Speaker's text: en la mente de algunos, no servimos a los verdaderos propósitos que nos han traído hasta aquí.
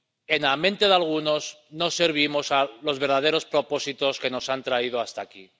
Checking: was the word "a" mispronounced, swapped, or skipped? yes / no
no